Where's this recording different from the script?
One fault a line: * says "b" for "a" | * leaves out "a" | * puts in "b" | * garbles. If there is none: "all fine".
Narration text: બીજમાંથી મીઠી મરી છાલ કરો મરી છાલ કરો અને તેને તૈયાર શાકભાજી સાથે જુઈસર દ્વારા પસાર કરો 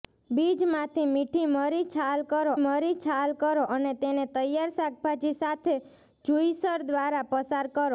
all fine